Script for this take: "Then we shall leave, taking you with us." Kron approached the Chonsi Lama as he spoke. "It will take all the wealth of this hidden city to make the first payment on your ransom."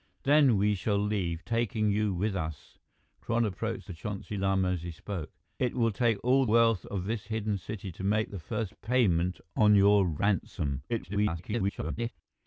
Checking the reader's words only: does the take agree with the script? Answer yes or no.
no